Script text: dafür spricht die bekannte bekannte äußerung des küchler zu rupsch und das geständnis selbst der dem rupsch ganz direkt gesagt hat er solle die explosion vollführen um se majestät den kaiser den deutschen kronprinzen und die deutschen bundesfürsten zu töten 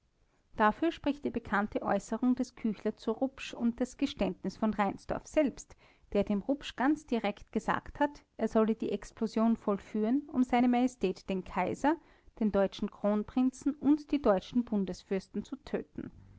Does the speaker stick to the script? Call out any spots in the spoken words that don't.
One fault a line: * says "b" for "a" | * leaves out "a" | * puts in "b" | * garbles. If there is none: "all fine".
* leaves out "bekannte"
* puts in "von reinsdorf"